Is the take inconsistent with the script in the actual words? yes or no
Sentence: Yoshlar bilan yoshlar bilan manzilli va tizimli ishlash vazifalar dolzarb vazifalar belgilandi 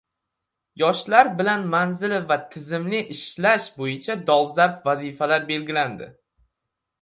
yes